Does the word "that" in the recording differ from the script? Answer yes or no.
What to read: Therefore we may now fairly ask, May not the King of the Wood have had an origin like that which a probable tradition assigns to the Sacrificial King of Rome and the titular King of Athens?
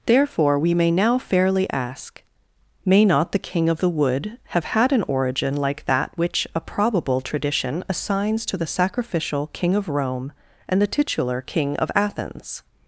no